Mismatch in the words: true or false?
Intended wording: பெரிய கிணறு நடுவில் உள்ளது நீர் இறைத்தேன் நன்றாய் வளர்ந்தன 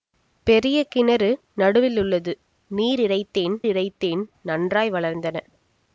true